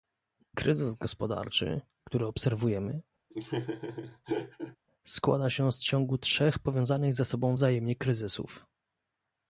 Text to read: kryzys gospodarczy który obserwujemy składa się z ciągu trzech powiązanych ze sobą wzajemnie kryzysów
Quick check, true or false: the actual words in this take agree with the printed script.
true